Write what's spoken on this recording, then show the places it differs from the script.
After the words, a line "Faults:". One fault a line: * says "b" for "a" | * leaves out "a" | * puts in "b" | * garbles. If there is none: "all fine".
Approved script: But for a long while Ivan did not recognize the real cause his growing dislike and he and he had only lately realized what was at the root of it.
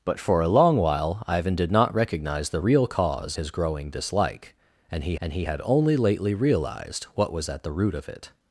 But for a long while Ivan did not recognize the real cause his growing dislike and he and he had only lately realized what was at the root of it.
Faults:
all fine